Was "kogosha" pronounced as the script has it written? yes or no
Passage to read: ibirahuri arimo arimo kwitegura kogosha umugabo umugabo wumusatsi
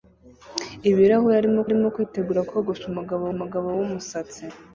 yes